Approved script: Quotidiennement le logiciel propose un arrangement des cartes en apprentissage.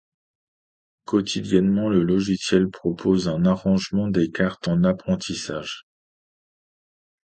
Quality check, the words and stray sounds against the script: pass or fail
pass